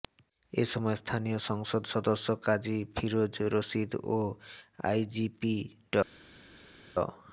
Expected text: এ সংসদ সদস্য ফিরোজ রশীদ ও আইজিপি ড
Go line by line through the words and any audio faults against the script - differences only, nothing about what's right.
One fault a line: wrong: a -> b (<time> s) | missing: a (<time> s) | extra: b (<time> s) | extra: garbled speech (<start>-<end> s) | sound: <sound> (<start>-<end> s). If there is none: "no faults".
extra: সময় স্থানীয় (0.7 s)
extra: কাজী (2.5 s)